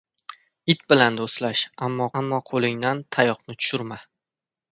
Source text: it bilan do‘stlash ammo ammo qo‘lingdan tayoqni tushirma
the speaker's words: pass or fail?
pass